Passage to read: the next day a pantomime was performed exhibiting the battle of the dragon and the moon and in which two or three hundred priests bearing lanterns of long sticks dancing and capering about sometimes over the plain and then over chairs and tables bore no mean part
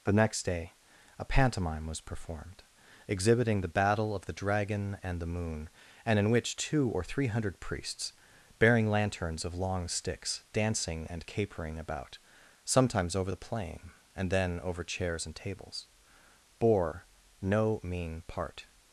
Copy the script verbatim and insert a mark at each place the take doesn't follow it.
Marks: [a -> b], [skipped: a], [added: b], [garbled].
the next day a pantomime was performed exhibiting the battle of the dragon and the moon and in which two or three hundred priests bearing lanterns of long sticks dancing and capering about sometimes over the plain and then over chairs and tables bore no mean part